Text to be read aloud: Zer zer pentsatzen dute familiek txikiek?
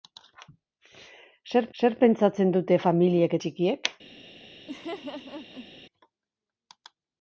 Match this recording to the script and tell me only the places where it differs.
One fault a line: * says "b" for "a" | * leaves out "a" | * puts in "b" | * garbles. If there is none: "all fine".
all fine